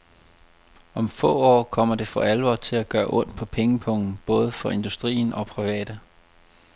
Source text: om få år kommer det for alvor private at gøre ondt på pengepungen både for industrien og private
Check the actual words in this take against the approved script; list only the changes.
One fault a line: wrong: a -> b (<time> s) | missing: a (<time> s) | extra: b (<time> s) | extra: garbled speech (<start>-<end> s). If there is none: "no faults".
wrong: private -> til (2.5 s)